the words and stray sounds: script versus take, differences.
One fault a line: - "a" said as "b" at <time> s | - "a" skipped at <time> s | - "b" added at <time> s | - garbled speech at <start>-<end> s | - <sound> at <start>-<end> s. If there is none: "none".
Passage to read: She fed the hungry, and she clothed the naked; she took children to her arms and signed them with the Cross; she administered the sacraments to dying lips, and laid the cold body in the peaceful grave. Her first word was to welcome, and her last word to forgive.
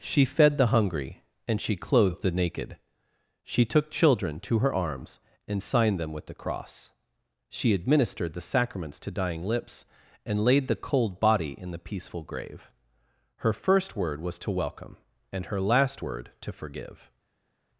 none